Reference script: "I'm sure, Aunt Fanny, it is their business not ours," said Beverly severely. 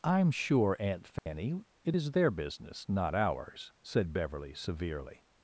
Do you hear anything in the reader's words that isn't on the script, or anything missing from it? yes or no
no